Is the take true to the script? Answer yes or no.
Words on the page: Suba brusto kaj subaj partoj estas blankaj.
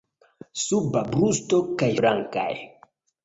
no